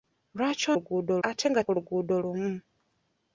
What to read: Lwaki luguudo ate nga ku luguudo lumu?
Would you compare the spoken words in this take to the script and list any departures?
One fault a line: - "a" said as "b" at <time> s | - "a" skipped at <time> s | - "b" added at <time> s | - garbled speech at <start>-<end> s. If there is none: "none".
none